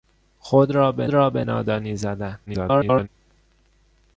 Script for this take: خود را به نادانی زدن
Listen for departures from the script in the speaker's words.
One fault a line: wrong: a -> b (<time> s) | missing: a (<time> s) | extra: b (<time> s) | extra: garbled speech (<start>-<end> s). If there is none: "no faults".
extra: را به (1.1 s)
extra: garbled speech (2.5-3.1 s)